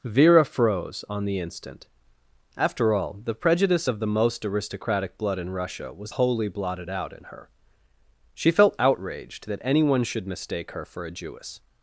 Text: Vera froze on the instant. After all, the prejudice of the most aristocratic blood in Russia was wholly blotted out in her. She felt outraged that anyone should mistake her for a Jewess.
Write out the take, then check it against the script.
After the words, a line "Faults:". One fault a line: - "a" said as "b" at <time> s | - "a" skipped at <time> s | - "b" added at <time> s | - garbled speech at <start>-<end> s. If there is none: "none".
Vera froze on the instant. After all, the prejudice of the most aristocratic blood in Russia was wholly blotted out in her. She felt outraged that anyone should mistake her for a Jewess.
Faults:
none